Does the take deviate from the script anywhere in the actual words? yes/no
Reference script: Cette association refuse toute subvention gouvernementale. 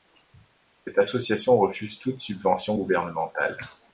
no